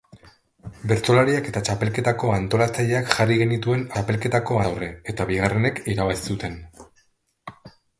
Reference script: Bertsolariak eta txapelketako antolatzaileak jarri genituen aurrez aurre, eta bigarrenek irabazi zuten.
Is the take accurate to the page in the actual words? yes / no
no